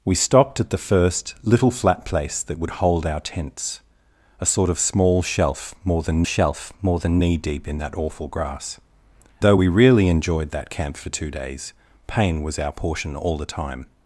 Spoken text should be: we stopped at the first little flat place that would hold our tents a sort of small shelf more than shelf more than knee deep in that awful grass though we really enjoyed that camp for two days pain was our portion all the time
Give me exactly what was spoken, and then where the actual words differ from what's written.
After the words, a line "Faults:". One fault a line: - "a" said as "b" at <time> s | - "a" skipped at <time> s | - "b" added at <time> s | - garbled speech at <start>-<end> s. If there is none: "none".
we stopped at the first little flat place that would hold our tents a sort of small shelf more than shelf more than knee deep in that awful grass though we really enjoyed that camp for two days pain was our portion all the time
Faults:
none